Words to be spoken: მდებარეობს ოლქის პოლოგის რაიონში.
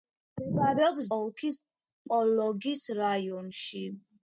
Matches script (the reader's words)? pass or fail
pass